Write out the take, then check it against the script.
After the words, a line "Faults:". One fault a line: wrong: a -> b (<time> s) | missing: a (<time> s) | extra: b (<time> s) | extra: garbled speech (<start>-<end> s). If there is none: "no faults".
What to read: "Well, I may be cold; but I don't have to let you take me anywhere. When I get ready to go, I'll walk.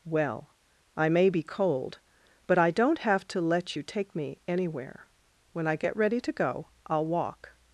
"Well, I may be cold; but I don't have to let you take me anywhere. When I get ready to go, I'll walk.
Faults:
no faults